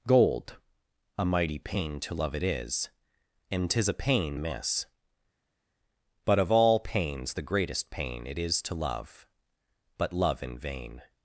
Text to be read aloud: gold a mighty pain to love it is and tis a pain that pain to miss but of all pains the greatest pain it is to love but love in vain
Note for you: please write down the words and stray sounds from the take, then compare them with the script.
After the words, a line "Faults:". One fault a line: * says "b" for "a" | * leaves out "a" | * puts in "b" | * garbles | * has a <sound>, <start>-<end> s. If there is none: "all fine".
gold a mighty pain to love it is and tis a pain miss but of all pains the greatest pain it is to love but love in vain
Faults:
* leaves out "that pain to"